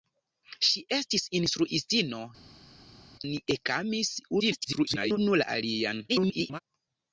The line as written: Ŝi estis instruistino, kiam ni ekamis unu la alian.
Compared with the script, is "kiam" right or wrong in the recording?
wrong